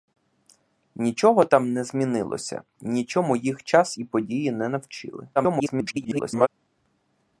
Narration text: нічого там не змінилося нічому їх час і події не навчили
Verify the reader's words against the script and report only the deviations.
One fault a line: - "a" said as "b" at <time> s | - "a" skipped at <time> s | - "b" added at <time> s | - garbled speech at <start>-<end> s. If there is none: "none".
- garbled speech at 5.4-6.5 s